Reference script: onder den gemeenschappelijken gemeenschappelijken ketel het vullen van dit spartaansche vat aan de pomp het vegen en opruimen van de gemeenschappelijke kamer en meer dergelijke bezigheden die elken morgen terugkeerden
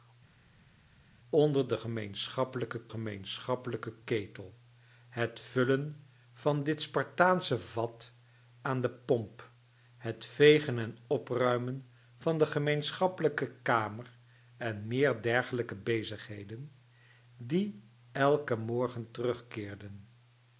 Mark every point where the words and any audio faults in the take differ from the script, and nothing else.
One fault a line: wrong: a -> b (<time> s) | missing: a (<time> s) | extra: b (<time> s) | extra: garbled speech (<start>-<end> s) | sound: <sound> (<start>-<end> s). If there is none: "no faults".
no faults